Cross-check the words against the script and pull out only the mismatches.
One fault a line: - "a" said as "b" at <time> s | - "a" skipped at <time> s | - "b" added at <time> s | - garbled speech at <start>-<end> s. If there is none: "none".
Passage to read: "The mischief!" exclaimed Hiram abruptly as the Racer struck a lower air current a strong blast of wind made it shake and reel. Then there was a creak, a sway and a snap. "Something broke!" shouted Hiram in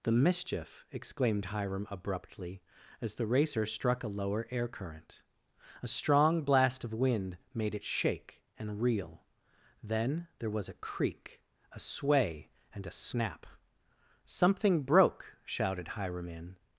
none